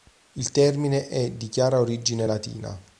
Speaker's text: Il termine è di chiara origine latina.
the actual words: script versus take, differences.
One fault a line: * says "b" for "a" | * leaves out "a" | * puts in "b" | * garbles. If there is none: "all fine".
all fine